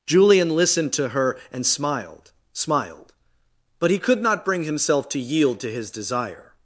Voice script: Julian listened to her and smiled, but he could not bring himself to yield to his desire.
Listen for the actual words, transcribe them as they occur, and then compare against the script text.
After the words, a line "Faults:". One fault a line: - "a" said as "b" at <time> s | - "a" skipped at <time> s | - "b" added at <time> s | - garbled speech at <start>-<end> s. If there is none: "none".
Julian listened to her and smiled smiled, but he could not bring himself to yield to his desire.
Faults:
- "smiled" added at 2.5 s